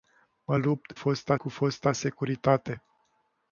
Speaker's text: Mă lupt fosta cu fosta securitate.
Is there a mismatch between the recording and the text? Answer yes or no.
no